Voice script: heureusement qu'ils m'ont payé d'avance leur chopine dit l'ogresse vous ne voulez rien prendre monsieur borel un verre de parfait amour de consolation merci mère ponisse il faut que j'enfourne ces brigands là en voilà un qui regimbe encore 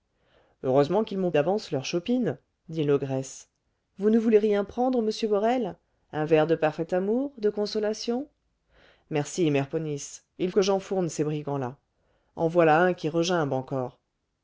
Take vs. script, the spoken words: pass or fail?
fail